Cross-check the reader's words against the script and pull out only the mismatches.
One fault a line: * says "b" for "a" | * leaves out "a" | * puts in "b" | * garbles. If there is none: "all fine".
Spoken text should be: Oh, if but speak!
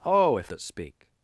all fine